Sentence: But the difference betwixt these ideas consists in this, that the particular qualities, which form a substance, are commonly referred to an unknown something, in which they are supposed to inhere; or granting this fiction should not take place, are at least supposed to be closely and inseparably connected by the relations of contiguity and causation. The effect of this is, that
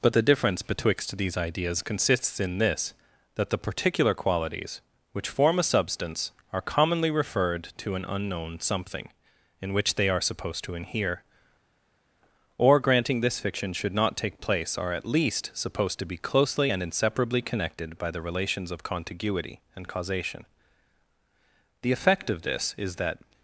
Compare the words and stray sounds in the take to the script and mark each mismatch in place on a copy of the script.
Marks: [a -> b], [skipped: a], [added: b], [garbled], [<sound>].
But the difference betwixt these ideas consists in this, that the particular qualities, which form a substance, are commonly referred to an unknown something, in which they are supposed to inhere; or granting this fiction should not take place, are at least supposed to be closely and inseparably connected by the relations of contiguity and causation. The effect of this is, that